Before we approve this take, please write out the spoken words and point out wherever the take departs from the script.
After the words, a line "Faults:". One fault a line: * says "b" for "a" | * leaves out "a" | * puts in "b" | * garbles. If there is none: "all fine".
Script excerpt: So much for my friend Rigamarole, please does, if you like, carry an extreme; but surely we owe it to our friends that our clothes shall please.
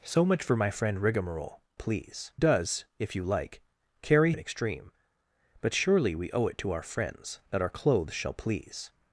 So much for my friend Rigamarole, please does, if you like, carry an extreme; but surely we owe it to our friends that our clothes shall please.
Faults:
all fine